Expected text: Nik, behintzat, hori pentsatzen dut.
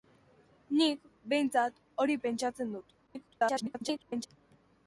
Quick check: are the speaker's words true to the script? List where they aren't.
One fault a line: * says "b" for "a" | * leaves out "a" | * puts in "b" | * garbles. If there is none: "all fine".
* garbles